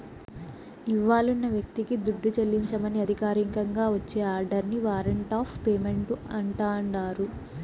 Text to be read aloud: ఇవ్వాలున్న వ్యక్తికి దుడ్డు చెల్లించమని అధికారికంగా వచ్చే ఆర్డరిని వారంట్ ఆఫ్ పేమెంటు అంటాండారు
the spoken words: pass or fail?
pass